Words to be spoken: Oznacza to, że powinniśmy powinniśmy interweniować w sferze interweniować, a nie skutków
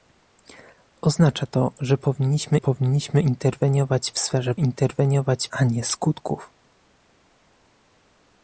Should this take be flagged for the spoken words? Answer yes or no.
no